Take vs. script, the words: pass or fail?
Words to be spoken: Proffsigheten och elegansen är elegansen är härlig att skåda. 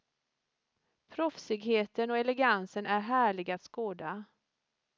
fail